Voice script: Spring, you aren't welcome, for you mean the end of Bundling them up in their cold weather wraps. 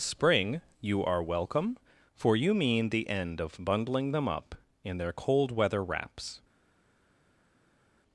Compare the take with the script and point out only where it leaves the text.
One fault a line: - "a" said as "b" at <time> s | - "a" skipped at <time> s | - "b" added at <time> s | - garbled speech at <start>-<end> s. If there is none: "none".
- "aren't" said as "are" at 1.1 s